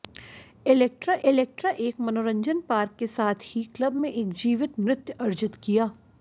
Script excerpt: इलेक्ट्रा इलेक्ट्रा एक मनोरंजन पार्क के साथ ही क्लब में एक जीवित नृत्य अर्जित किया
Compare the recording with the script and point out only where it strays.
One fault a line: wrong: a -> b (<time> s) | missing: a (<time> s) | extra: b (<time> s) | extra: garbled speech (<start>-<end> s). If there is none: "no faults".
no faults